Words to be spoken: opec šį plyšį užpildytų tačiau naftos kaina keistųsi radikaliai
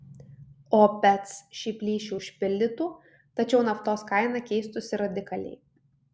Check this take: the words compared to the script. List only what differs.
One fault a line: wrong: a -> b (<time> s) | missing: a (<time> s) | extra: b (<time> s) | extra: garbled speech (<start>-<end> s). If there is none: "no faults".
no faults